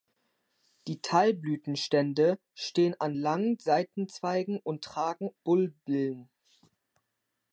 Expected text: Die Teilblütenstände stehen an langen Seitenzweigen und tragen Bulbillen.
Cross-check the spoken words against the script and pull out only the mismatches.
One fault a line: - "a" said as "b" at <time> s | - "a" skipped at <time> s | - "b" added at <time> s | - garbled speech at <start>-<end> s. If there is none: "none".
none